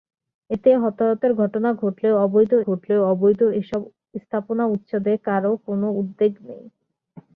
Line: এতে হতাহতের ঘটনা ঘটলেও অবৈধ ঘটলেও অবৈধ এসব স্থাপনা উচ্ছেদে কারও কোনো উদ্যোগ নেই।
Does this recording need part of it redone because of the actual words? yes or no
no